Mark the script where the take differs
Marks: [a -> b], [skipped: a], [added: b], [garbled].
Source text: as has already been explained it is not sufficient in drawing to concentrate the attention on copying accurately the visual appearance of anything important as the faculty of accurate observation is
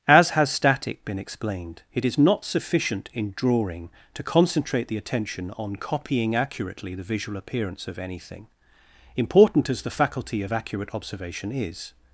as has [already -> static] been explained it is not sufficient in drawing to concentrate the attention on copying accurately the visual appearance of anything important as the faculty of accurate observation is